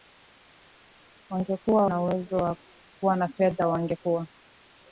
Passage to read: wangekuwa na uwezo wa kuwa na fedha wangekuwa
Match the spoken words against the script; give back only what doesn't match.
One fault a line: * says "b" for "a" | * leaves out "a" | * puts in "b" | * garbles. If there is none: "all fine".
all fine